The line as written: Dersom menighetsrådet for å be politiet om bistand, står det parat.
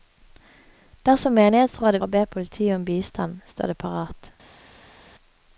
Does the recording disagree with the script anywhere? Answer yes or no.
no